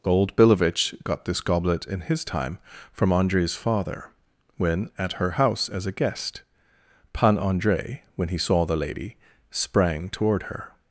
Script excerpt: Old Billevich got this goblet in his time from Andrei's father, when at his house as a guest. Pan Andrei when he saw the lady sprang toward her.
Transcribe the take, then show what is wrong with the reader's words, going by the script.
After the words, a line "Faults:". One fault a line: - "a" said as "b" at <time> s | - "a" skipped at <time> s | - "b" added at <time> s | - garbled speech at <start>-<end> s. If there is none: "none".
Old Billevich got this goblet in his time from Andrei's father, when at her house as a guest. Pan Andrei when he saw the lady sprang toward her.
Faults:
- "his" said as "her" at 5.1 s